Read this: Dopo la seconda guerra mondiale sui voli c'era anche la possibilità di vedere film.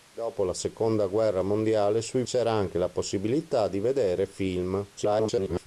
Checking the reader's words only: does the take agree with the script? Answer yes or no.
no